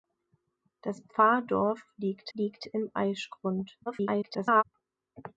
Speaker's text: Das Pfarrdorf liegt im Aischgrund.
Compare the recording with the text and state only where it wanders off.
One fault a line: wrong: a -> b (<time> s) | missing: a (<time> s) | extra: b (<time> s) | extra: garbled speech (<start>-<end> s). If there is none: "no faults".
extra: liegt (2.3 s)
extra: garbled speech (3.9-4.6 s)